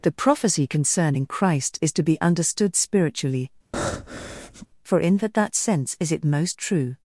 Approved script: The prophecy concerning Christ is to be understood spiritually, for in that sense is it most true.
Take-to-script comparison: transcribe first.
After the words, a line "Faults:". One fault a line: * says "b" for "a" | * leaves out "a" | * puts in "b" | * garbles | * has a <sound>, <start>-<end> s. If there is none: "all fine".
The prophecy concerning Christ is to be understood spiritually, for in that that sense is it most true.
Faults:
* has a breath, 3.7-4.7 s
* puts in "that"